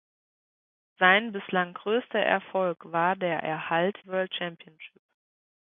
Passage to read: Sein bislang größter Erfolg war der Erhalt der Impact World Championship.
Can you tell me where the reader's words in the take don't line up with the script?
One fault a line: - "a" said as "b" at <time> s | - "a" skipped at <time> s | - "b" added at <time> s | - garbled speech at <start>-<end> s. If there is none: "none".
- "der Impact" skipped at 4.0 s